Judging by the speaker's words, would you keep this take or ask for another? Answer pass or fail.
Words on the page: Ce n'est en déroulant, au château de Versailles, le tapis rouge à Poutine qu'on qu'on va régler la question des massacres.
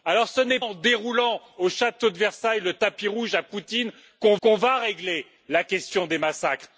pass